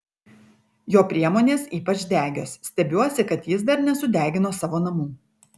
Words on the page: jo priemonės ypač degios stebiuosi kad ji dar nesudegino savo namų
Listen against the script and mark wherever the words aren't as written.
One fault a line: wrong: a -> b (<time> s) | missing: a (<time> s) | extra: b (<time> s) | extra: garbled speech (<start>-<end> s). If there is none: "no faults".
wrong: ji -> jis (3.5 s)